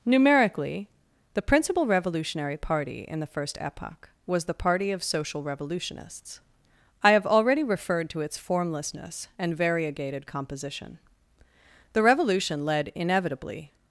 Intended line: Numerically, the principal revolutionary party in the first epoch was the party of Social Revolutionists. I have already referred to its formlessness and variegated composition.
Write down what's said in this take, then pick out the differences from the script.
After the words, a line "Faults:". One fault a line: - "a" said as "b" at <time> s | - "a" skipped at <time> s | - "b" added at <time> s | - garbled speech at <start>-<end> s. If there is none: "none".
Numerically, the principal revolutionary party in the first epoch was the party of Social Revolutionists. I have already referred to its formlessness and variegated composition. The revolution led inevitably
Faults:
- "The revolution led inevitably" added at 11.9 s